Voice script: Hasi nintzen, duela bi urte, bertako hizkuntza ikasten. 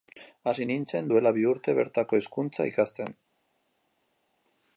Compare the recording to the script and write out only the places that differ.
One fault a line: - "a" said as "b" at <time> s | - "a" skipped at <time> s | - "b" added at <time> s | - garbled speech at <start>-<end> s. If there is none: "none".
none